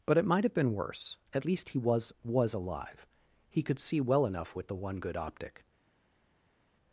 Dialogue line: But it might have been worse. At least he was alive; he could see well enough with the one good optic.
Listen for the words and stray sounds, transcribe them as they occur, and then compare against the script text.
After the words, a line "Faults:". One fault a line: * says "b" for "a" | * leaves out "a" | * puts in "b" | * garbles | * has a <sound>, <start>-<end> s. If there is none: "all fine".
But it might have been worse. At least he was was alive; he could see well enough with the one good optic.
Faults:
* puts in "was"